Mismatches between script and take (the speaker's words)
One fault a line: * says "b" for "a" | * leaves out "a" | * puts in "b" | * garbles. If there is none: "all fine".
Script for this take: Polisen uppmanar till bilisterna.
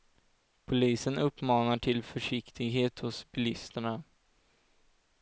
* puts in "försiktighet hos"